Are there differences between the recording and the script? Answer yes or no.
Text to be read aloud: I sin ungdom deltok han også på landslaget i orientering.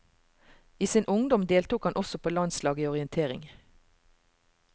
no